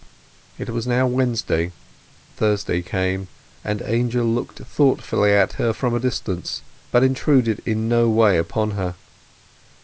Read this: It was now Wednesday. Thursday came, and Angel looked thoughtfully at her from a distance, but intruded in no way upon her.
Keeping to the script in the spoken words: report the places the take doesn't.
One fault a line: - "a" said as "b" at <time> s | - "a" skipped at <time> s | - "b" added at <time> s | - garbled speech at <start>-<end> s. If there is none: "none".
none